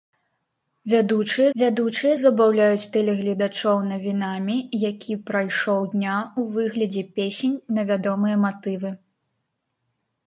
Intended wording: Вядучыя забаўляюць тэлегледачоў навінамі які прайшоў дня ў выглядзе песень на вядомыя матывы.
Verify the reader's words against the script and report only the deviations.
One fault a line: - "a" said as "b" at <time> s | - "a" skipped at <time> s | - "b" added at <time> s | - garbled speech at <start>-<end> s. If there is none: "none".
- "вядучыя" added at 1.6 s